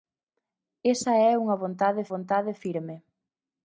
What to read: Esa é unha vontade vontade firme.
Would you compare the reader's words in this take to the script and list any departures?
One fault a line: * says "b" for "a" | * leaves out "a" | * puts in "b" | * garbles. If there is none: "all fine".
all fine